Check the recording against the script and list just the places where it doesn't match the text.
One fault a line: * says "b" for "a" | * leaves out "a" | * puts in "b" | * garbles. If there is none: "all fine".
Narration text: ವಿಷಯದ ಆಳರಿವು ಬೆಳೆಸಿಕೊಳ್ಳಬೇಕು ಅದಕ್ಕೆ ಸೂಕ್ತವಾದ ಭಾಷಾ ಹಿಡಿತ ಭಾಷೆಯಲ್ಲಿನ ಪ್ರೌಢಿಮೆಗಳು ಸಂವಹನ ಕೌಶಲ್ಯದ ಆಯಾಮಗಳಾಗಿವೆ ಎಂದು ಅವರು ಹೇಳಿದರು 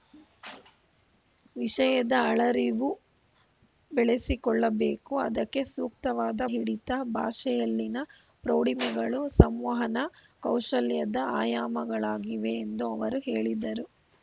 * leaves out "ಭಾಷಾ"